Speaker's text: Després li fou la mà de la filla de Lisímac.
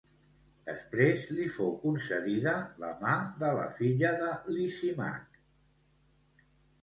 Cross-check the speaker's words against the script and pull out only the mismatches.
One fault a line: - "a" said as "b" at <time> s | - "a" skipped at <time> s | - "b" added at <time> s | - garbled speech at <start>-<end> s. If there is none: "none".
- "concedida" added at 1.8 s